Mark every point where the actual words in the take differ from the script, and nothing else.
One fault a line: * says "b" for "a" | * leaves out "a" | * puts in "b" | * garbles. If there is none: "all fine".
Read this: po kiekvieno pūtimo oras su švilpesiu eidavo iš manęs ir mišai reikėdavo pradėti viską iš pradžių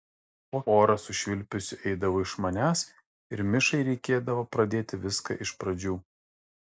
* leaves out "kiekvieno pūtimo"